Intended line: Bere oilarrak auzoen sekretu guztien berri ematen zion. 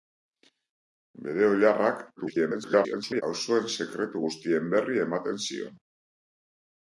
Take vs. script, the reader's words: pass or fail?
fail